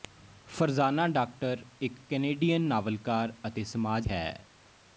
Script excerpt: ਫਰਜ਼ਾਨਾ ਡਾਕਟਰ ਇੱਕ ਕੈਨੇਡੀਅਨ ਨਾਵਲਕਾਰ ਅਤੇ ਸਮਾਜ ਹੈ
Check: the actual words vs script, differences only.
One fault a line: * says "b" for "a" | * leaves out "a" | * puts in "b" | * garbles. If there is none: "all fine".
all fine